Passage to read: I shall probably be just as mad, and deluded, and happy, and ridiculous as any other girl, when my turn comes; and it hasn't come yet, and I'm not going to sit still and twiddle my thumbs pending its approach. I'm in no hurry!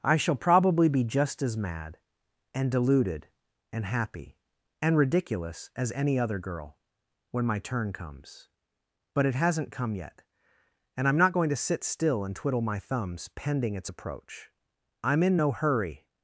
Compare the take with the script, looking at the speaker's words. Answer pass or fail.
fail